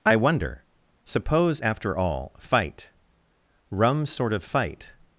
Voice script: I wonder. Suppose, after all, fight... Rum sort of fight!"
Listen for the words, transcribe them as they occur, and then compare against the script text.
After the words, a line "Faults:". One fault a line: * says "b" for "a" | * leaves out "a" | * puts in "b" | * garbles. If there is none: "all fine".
I wonder. Suppose, after all, fight... Rum sort of fight!"
Faults:
all fine